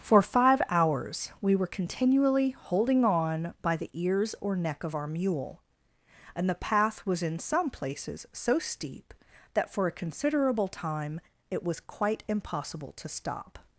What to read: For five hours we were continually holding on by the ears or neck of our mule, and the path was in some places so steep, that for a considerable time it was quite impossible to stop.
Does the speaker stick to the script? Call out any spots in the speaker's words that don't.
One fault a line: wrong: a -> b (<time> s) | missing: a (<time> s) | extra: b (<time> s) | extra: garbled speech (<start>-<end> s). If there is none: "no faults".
no faults